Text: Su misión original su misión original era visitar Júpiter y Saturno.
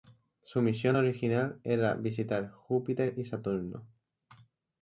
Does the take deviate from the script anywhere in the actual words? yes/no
yes